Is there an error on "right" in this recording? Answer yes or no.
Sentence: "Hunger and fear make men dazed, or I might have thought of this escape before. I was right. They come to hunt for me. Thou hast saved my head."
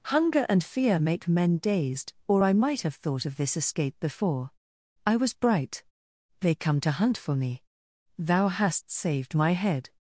yes